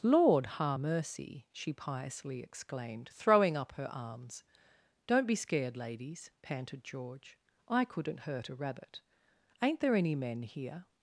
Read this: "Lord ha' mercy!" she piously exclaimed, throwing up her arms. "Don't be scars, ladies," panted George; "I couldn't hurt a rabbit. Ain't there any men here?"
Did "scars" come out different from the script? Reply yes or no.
yes